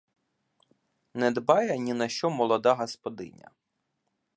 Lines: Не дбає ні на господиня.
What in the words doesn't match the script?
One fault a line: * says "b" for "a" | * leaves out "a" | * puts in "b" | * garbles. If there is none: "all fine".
* puts in "що молода"